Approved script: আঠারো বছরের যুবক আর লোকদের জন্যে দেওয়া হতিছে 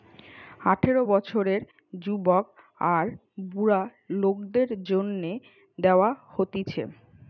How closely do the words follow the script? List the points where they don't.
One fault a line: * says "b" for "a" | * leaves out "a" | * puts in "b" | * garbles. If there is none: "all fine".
* puts in "বুড়া"